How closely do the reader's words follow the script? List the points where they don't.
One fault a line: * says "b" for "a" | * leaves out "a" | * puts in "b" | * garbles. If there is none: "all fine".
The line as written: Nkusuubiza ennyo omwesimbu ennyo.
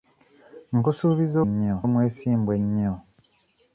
all fine